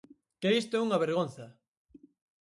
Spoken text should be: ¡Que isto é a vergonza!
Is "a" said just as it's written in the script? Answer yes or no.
no